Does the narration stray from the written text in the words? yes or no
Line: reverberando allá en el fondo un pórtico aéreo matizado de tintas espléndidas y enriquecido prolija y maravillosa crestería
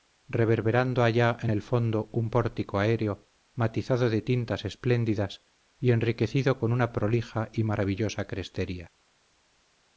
yes